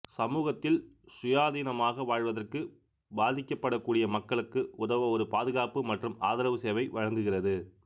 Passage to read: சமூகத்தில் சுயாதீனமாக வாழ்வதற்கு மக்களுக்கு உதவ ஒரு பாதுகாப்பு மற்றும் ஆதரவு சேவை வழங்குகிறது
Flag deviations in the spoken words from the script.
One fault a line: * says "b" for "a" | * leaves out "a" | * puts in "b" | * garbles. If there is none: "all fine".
* puts in "பாதிக்கப்படக்கூடிய"